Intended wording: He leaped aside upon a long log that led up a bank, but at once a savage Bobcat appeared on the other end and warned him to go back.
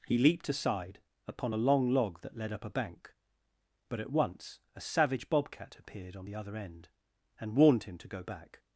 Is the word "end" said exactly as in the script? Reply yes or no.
yes